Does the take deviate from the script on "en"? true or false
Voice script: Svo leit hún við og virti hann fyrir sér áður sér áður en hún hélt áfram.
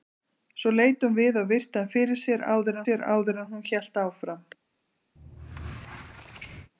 false